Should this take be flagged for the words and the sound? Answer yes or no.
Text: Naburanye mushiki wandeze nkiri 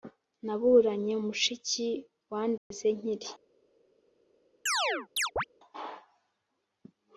yes